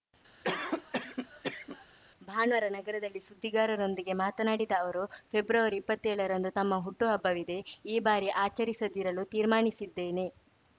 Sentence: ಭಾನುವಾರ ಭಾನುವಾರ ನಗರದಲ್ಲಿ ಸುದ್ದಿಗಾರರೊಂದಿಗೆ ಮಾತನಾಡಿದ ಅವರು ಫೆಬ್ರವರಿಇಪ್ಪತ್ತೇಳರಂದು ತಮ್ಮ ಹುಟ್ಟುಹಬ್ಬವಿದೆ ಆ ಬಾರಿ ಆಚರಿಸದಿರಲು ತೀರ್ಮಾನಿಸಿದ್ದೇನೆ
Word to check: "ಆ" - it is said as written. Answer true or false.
false